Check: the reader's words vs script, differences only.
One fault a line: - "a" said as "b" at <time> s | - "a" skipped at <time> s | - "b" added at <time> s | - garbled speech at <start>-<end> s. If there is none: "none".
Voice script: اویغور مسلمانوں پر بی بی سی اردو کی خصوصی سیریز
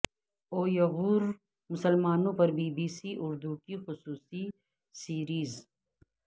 none